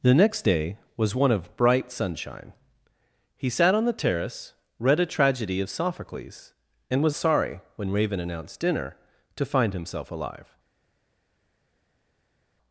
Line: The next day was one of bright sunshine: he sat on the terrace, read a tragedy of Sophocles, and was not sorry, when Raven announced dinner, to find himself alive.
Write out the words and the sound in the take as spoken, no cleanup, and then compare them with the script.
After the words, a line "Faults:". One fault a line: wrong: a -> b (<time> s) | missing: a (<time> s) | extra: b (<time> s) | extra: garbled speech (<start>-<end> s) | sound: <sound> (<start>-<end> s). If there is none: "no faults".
The next day was one of bright sunshine: he sat on the terrace, read a tragedy of Sophocles, and was sorry, when Raven announced dinner, to find himself alive.
Faults:
missing: not (7.2 s)